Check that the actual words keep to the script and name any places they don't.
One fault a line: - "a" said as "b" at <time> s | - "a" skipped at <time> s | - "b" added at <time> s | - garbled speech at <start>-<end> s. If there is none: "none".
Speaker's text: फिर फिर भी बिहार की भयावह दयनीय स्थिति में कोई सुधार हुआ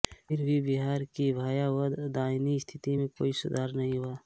- "फिर" skipped at 0.4 s
- "नहीं" added at 3.7 s